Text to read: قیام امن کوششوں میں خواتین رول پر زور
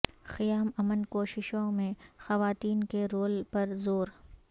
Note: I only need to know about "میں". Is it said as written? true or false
true